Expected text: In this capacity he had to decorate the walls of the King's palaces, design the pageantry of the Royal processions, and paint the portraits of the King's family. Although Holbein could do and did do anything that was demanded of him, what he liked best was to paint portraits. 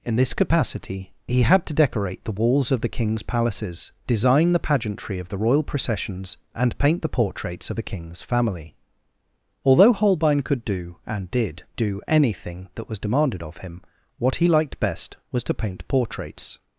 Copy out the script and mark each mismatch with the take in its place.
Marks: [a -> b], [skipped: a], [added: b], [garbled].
In this capacity he had to decorate the walls of the King's palaces, design the pageantry of the Royal processions, and paint the portraits of the King's family. Although Holbein could do and did do anything that was demanded of him, what he liked best was to paint portraits.